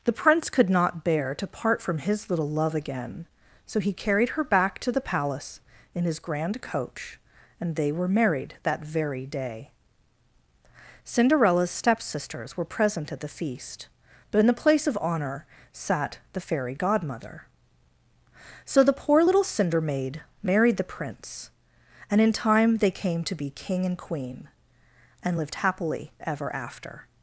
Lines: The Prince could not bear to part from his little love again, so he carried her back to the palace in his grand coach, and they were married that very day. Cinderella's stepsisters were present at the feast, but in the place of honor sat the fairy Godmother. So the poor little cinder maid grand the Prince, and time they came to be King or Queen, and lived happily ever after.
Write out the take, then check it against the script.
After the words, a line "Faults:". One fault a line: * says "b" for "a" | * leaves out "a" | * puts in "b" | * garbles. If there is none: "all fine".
The Prince could not bear to part from his little love again, so he carried her back to the palace in his grand coach, and they were married that very day. Cinderella's stepsisters were present at the feast, but in the place of honor sat the fairy Godmother. So the poor little cinder maid married the Prince, and in time they came to be King and Queen, and lived happily ever after.
Faults:
* says "married" for "grand"
* puts in "in"
* says "and" for "or"